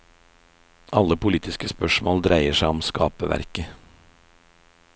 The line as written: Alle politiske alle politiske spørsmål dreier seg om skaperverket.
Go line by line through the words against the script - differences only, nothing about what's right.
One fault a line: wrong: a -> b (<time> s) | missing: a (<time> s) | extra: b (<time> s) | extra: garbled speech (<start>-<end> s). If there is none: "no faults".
missing: alle politiske (1.7 s)